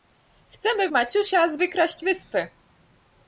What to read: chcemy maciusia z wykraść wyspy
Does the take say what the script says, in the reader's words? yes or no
yes